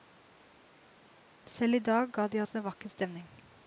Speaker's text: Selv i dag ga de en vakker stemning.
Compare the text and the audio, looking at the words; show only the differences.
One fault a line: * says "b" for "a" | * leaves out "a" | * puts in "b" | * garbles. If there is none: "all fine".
* puts in "oss"